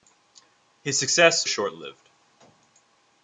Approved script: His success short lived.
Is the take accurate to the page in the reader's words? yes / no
yes